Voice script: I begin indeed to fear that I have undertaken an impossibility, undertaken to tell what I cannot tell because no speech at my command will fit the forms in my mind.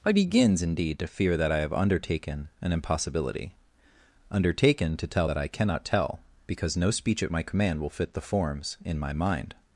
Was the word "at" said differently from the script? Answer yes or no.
no